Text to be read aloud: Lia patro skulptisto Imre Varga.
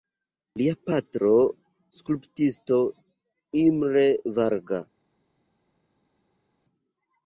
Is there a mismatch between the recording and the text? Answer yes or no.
no